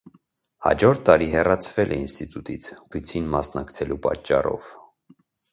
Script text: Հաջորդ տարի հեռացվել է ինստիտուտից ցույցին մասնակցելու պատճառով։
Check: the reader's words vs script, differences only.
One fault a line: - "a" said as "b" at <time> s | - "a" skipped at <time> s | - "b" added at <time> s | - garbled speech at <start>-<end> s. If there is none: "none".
none